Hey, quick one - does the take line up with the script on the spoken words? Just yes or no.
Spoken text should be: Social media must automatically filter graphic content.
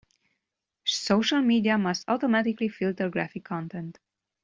yes